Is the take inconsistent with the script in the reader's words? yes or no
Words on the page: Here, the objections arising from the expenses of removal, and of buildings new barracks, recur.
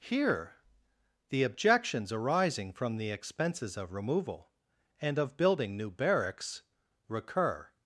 yes